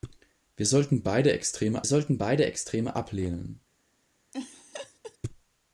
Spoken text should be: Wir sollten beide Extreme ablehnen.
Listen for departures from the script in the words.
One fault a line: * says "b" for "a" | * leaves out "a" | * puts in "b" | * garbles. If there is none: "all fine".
* puts in "sollten beide Extreme"